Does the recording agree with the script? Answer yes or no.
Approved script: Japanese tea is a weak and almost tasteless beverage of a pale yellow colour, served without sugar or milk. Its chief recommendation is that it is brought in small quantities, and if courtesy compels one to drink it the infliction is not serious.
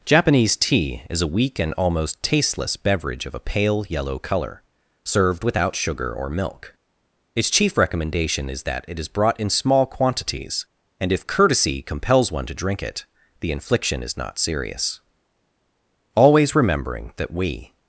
no